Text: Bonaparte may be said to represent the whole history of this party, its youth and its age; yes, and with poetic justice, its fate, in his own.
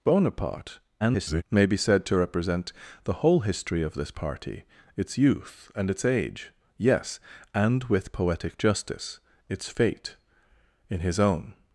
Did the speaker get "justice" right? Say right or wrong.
right